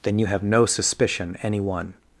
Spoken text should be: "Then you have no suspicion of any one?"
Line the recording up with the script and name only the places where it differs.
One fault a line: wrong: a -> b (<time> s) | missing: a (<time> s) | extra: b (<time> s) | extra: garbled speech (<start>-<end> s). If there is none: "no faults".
missing: of (1.4 s)